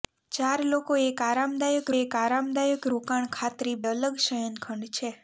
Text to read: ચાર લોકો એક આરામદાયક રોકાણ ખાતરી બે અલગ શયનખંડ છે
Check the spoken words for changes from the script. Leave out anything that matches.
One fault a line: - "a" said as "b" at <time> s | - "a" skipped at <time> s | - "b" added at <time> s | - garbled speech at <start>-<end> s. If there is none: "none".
- "એક આરામદાયક" added at 1.9 s
- "બે" skipped at 3.8 s